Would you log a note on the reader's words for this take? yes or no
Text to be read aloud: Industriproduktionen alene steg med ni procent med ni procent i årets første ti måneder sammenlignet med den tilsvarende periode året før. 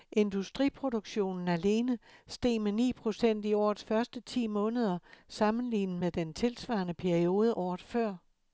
yes